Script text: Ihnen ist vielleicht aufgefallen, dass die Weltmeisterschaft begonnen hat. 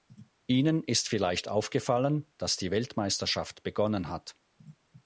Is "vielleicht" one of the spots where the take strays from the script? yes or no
no